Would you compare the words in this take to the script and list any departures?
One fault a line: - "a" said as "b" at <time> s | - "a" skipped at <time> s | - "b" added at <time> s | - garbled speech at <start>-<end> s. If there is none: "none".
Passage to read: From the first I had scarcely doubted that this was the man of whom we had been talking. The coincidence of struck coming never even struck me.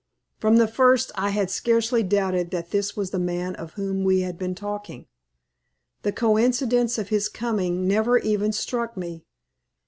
- "struck" said as "his" at 7.1 s